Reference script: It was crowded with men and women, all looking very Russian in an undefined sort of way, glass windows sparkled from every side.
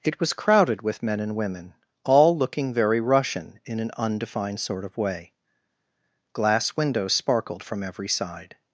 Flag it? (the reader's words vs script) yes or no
no